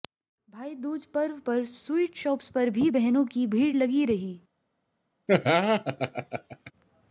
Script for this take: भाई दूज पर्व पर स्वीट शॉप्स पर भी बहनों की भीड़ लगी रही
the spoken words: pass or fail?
pass